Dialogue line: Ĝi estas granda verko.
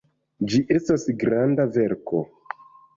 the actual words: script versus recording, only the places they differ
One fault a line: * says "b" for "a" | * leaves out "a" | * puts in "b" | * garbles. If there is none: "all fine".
all fine